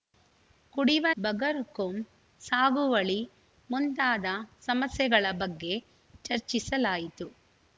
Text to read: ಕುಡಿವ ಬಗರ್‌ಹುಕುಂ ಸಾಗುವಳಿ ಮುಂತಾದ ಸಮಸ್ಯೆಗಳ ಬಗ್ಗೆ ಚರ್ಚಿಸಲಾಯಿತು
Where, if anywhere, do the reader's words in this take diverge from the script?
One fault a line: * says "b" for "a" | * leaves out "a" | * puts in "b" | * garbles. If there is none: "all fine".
all fine